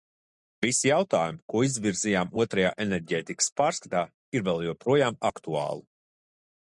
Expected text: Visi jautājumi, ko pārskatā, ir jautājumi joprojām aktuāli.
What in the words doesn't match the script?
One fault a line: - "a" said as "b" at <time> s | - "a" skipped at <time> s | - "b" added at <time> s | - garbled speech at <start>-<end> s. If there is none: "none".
- "izvirzījām Otrajā enerģētikas" added at 1.7 s
- "jautājumi" said as "vēl" at 4.5 s